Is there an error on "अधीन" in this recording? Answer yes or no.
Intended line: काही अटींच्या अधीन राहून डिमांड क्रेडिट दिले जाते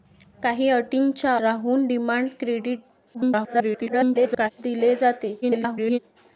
yes